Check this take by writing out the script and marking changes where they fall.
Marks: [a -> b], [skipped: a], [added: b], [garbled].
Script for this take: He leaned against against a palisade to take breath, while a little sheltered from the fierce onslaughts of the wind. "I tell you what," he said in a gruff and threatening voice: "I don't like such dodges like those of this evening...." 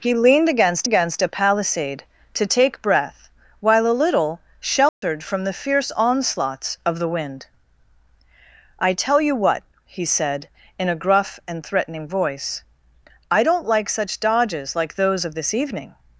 He leaned against against a palisade to take breath, while a little sheltered from the fierce onslaughts of the wind. "I tell you what," he said in a gruff and threatening voice: "I don't like such dodges like those of this evening...."